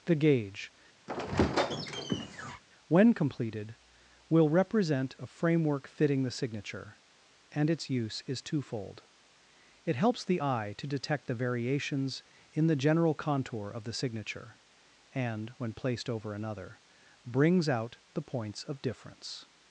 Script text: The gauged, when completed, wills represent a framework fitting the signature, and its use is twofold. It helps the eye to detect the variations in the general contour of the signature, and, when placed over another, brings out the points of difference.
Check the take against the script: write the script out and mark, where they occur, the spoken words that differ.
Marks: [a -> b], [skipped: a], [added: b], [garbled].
The [gauged, -> gauge] when completed, [wills -> will] represent a framework fitting the signature, and its use is twofold. It helps the eye to detect the variations in the general contour of the signature, and, when placed over another, brings out the points of difference.